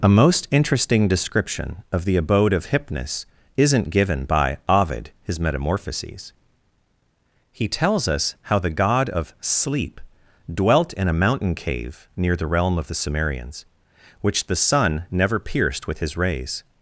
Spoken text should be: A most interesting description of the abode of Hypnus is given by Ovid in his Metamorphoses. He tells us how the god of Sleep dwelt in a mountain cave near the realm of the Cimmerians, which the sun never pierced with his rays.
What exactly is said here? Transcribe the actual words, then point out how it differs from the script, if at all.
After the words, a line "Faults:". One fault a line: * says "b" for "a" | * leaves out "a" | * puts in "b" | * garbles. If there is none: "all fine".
A most interesting description of the abode of Hypnus isn't given by Ovid his Metamorphoses. He tells us how the god of Sleep dwelt in a mountain cave near the realm of the Cimmerians, which the sun never pierced with his rays.
Faults:
* says "isn't" for "is"
* leaves out "in"